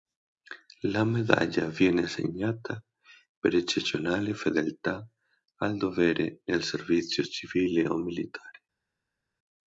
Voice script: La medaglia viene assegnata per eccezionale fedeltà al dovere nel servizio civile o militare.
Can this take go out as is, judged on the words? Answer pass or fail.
pass